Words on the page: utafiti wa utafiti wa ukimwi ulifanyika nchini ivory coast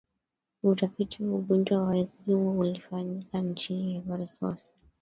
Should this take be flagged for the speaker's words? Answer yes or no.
yes